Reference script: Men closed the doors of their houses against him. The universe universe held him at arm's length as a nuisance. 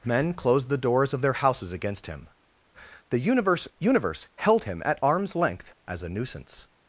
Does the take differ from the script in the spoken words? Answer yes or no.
no